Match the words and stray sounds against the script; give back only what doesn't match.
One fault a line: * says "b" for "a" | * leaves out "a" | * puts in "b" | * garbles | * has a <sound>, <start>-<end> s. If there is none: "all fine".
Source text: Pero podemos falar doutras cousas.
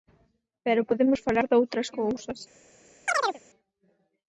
* has a chirp, 3.1-3.4 s